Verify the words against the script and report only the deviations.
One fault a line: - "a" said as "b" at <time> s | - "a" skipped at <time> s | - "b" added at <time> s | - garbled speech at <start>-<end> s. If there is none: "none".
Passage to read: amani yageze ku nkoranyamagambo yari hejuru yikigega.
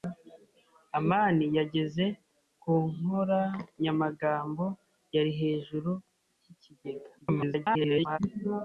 - garbled speech at 7.2-8.2 s